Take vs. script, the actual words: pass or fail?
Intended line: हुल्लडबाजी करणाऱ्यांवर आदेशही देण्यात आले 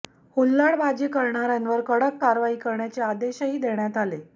fail